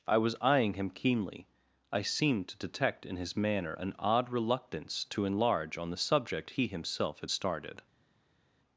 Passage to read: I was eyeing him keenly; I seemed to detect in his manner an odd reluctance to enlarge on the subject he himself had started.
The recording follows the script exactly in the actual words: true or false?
true